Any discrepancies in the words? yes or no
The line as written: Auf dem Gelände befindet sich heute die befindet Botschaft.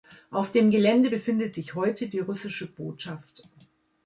yes